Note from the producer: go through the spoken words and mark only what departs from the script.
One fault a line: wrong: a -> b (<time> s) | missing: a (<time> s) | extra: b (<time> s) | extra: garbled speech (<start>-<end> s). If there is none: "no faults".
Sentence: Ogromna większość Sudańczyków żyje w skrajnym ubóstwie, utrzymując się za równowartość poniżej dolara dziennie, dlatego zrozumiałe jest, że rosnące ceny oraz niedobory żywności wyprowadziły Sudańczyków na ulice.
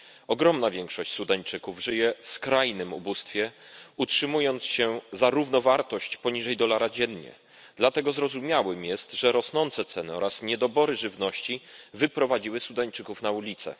no faults